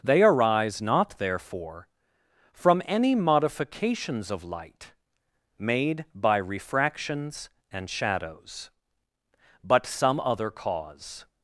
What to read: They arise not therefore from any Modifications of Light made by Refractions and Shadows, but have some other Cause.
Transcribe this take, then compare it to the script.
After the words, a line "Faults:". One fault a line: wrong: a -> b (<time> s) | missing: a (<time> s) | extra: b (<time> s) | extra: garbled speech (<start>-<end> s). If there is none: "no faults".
They arise not therefore from any Modifications of Light made by Refractions and Shadows, but some other Cause.
Faults:
missing: have (9.9 s)